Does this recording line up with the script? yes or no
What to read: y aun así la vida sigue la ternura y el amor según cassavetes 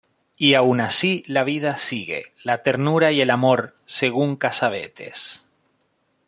yes